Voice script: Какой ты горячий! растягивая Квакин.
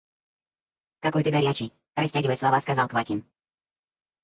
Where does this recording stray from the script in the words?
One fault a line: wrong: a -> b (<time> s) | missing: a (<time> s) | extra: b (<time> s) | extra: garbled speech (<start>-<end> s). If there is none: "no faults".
extra: слова сказал (2.4 s)